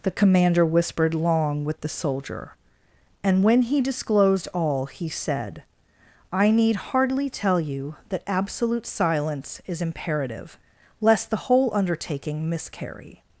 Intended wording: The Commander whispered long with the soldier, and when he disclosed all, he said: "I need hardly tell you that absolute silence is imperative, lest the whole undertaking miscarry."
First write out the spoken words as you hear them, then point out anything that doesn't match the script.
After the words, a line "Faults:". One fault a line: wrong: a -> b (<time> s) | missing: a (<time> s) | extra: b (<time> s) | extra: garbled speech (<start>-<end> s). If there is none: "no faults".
The Commander whispered long with the soldier, and when he disclosed all, he said: "I need hardly tell you that absolute silence is imperative, lest the whole undertaking miscarry."
Faults:
no faults